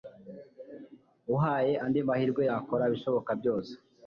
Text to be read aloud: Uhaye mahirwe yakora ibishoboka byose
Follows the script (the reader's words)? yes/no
no